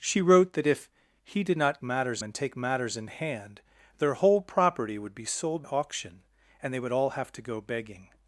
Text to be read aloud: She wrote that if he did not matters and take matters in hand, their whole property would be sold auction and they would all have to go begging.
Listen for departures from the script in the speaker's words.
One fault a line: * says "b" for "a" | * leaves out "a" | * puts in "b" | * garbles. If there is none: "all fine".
all fine